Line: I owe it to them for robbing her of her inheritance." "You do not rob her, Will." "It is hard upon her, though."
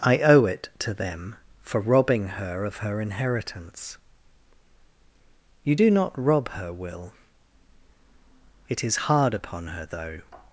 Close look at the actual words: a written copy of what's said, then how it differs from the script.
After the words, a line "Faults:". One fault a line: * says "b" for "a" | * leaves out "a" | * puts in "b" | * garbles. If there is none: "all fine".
I owe it to them for robbing her of her inheritance." "You do not rob her, Will." "It is hard upon her, though."
Faults:
all fine